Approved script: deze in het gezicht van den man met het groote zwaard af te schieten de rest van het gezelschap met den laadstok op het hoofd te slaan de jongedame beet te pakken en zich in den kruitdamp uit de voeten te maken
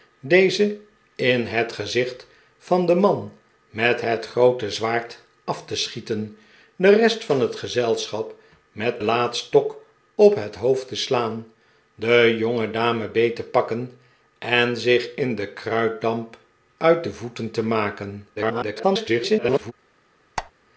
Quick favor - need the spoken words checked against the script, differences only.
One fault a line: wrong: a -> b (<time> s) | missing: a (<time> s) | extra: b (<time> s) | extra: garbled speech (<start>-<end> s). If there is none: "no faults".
missing: den (9.0 s)
extra: garbled speech (18.4-19.7 s)